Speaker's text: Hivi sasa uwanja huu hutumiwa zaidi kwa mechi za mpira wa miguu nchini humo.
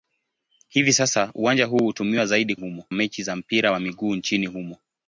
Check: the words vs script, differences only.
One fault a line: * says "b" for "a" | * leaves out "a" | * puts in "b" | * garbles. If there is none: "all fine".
* says "humo" for "kwa"